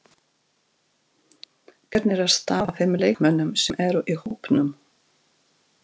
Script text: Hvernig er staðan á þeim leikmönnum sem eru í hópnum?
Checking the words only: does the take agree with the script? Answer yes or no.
yes